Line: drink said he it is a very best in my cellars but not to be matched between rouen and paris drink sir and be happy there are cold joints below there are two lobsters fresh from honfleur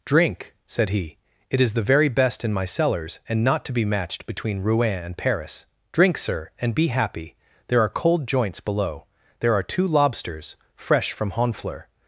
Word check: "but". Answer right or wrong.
wrong